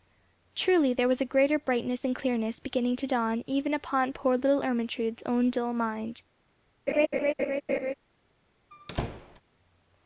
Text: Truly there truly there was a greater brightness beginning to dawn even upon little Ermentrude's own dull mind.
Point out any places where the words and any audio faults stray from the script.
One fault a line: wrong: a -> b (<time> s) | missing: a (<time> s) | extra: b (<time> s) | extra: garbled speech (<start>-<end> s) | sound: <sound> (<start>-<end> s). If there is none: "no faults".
missing: truly there (1.1 s)
extra: and clearness (2.1 s)
extra: poor (4.1 s)
sound: laugh (6.9-7.9 s)
sound: squeak (8.7-9.4 s)